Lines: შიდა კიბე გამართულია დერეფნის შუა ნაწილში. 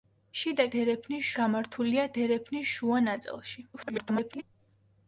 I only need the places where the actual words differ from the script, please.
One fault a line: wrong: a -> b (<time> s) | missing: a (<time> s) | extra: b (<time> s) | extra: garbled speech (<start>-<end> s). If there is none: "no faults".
wrong: კიბე -> დერეფნის (0.8 s)
extra: garbled speech (3.7-4.4 s)